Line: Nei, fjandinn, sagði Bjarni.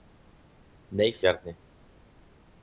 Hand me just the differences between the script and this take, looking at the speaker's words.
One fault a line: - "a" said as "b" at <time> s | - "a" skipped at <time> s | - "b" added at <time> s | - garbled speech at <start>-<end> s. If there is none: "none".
- "fjandinn sagði" skipped at 1.1 s